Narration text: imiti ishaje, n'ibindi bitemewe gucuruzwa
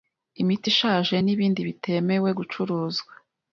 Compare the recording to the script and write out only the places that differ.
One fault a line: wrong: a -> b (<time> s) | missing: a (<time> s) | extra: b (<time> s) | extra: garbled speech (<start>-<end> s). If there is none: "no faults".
no faults